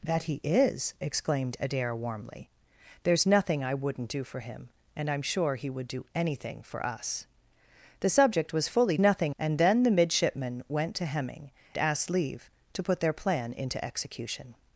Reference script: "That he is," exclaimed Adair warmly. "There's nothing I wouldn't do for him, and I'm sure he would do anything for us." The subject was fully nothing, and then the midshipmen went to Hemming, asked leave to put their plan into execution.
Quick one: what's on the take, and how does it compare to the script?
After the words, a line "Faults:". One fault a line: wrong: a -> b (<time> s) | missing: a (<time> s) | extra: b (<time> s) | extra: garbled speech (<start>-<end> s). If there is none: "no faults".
"That he is," exclaimed Adair warmly. "There's nothing I wouldn't do for him, and I'm sure he would do anything for us." The subject was fully nothing, and then the midshipmen went to Hemming, asked leave to put their plan into execution.
Faults:
no faults